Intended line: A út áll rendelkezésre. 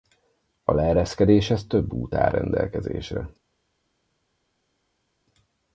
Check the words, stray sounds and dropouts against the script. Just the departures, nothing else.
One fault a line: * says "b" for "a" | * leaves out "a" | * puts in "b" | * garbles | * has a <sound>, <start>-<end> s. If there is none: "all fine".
* puts in "leereszkedéshez több"